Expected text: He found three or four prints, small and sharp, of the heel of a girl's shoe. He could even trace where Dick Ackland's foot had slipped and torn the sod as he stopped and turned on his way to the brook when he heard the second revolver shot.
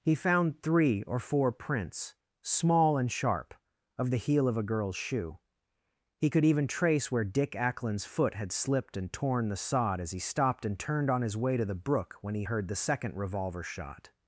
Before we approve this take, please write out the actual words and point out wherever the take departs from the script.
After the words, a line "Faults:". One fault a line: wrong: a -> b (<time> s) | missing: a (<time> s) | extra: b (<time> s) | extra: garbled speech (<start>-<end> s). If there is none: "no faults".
He found three or four prints, small and sharp, of the heel of a girl's shoe. He could even trace where Dick Ackland's foot had slipped and torn the sod as he stopped and turned on his way to the brook when he heard the second revolver shot.
Faults:
no faults